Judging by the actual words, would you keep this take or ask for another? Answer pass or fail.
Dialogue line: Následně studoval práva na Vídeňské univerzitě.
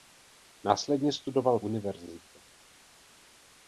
fail